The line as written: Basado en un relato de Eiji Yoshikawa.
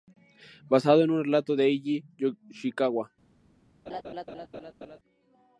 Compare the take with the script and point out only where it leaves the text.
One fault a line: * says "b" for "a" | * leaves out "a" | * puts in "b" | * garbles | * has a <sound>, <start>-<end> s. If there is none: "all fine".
* has a laugh, 3.9-5.0 s